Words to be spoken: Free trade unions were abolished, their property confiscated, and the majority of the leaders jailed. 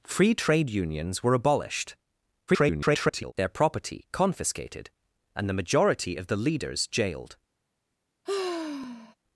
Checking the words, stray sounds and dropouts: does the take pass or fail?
fail